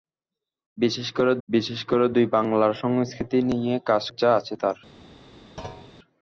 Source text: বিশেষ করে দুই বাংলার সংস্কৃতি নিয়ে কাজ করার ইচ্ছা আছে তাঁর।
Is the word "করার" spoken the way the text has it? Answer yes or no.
no